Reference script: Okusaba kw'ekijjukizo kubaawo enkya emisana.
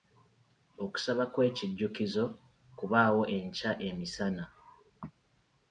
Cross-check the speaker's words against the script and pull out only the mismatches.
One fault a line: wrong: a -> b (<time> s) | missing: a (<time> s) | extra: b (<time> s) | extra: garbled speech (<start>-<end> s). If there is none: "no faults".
no faults